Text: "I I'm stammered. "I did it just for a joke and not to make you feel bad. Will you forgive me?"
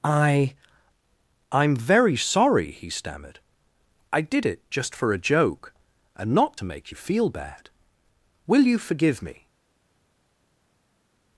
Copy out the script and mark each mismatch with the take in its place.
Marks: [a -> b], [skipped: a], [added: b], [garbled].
"I I'm [added: very sorry he] stammered. "I did it just for a joke and not to make you feel bad. Will you forgive me?"